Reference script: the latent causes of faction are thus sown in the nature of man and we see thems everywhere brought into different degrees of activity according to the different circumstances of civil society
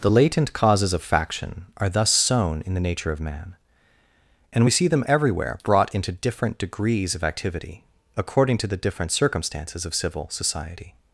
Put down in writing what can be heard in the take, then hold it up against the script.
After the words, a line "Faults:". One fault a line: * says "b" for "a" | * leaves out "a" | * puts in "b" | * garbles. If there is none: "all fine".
the latent causes of faction are thus sown in the nature of man and we see them everywhere brought into different degrees of activity according to the different circumstances of civil society
Faults:
* says "them" for "thems"